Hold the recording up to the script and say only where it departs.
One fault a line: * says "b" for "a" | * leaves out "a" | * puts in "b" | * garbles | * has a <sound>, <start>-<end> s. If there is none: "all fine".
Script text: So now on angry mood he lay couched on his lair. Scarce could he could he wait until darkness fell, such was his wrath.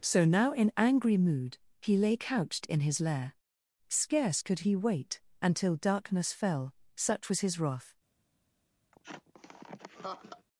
* says "in" for "on"
* says "in" for "on"
* leaves out "could he"
* has a laugh, 8.9-10.5 s